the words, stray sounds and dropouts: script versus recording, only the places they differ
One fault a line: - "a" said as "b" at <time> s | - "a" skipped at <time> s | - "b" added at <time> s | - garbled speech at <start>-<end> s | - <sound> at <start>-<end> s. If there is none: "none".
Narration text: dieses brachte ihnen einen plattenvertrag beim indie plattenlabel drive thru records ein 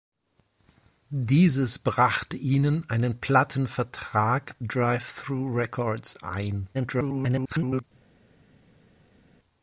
- "beim indie plattenlabel" skipped at 4.5 s
- garbled speech at 6.7-7.8 s